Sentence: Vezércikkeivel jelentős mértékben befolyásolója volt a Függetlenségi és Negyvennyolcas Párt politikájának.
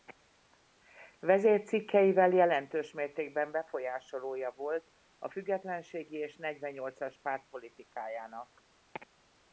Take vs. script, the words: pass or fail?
pass